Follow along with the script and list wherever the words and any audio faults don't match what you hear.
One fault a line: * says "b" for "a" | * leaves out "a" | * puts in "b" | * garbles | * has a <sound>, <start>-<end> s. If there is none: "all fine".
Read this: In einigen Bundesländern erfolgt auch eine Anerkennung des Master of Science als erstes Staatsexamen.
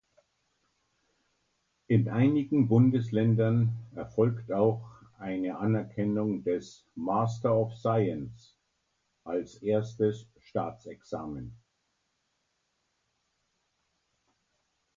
all fine